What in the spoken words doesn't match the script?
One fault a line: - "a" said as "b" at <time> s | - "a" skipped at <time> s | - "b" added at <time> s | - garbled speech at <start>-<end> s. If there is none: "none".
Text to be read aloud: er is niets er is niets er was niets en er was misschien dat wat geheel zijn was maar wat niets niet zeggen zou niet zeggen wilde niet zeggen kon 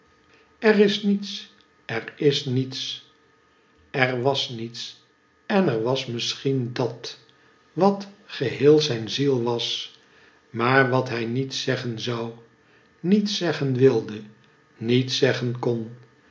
- "ziel" added at 9.1 s
- "niets" said as "hij" at 11.1 s